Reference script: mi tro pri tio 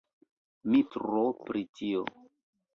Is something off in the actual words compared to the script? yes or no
no